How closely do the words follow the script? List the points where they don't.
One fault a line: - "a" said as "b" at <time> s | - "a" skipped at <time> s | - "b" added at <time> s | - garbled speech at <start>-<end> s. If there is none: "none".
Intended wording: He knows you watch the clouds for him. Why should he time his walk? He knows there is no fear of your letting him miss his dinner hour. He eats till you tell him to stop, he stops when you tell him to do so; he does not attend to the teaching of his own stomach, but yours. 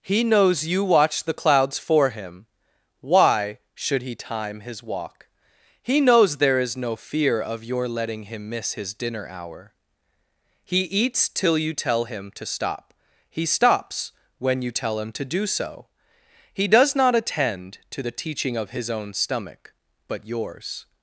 none